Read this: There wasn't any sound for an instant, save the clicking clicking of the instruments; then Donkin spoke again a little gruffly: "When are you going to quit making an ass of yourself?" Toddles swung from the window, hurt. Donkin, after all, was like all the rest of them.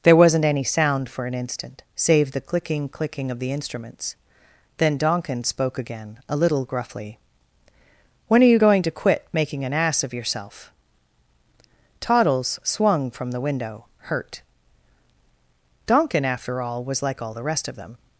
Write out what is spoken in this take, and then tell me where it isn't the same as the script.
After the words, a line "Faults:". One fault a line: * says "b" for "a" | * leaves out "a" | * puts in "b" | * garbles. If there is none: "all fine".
There wasn't any sound for an instant, save the clicking clicking of the instruments; then Donkin spoke again a little gruffly: "When are you going to quit making an ass of yourself?" Toddles swung from the window, hurt. Donkin, after all, was like all the rest of them.
Faults:
all fine